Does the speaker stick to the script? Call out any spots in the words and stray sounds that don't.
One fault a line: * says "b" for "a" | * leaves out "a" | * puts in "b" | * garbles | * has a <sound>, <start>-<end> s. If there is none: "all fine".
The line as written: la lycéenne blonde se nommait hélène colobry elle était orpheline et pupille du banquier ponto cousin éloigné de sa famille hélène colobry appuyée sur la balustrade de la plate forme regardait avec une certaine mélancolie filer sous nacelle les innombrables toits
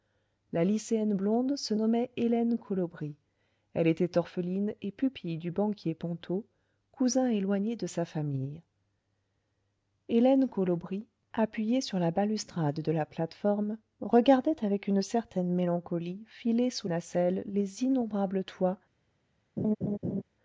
* has a laugh, 19.6-20.2 s